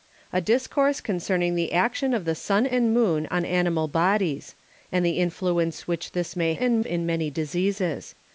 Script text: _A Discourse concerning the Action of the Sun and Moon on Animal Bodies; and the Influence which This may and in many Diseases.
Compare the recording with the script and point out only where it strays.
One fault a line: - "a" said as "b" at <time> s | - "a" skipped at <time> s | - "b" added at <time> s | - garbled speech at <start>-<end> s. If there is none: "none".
none